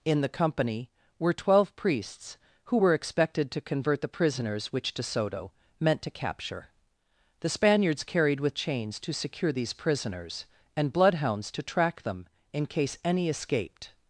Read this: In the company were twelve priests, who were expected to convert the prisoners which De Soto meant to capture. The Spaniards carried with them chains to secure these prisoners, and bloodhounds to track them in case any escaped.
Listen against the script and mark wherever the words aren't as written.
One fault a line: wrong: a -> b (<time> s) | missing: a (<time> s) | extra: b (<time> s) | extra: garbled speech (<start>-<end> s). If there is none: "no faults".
missing: them (8.6 s)